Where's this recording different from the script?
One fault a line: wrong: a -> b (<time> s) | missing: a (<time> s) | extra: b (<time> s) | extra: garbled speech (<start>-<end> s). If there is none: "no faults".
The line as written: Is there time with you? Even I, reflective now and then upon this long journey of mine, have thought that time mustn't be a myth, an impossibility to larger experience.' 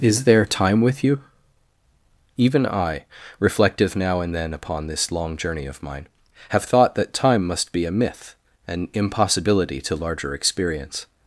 wrong: mustn't -> must (7.4 s)